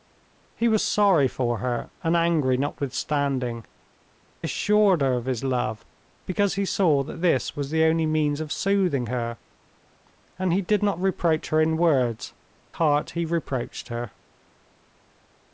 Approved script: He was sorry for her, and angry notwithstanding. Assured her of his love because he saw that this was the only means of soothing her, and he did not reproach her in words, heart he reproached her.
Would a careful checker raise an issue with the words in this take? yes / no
no